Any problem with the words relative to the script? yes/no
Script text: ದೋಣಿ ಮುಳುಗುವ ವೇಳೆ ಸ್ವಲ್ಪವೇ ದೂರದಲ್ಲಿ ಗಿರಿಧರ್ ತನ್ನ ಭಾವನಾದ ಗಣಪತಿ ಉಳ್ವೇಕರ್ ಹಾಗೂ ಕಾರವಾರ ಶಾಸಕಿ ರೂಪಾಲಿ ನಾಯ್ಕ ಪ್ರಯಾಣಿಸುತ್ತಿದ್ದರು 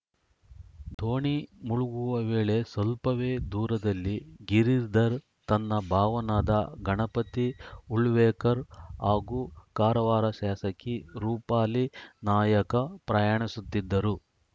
no